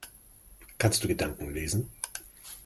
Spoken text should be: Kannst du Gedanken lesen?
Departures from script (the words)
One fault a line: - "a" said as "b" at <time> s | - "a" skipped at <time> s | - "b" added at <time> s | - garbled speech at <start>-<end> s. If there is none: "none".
none